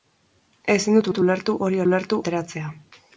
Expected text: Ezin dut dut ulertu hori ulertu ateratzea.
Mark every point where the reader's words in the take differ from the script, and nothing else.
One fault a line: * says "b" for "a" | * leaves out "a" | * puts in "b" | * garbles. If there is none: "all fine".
all fine